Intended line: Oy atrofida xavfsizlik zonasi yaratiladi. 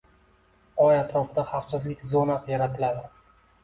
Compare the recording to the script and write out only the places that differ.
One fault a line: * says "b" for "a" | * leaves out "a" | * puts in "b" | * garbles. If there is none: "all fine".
all fine